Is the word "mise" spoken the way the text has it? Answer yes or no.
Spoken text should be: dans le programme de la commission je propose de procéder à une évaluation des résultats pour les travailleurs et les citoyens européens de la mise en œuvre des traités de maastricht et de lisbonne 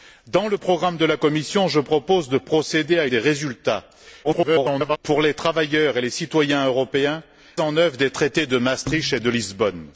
no